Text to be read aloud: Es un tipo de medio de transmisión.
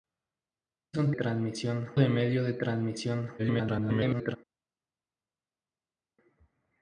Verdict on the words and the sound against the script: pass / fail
fail